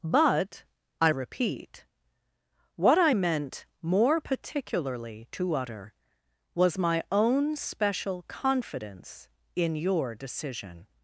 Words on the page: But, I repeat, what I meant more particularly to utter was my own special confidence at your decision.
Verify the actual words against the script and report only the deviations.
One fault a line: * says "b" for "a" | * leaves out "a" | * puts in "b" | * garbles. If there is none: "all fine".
* says "in" for "at"